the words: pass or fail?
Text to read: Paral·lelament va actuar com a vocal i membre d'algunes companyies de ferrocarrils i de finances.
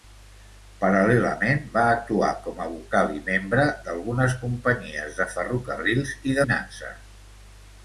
fail